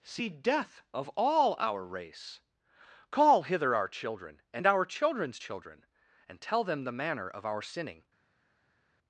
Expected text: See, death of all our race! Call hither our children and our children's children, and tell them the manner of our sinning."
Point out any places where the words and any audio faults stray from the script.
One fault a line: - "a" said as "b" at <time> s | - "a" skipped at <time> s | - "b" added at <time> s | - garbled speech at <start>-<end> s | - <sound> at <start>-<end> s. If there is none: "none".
none